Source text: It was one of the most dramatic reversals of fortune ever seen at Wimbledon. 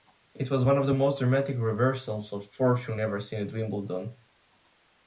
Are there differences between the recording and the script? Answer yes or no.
no